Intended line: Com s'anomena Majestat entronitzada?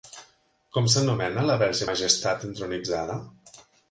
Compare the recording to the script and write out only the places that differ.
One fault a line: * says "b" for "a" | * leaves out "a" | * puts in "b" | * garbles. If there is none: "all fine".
* puts in "la Verge"